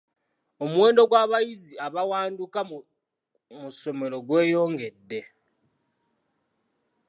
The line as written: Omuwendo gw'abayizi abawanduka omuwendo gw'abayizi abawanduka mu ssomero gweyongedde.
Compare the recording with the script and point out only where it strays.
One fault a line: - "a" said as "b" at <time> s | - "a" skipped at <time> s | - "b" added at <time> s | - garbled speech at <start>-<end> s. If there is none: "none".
- "omuwendo gw'abayizi abawanduka" skipped at 2.6 s